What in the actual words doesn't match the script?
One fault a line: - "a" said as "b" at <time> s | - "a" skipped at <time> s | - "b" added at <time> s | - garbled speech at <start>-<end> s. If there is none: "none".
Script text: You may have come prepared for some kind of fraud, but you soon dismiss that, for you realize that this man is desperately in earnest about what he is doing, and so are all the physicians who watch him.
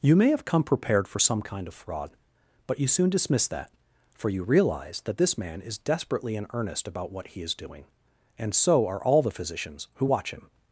none